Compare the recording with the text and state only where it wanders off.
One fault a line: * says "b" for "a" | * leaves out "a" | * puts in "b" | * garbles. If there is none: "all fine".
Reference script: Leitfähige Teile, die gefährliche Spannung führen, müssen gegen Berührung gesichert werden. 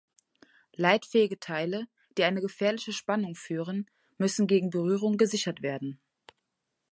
* puts in "eine"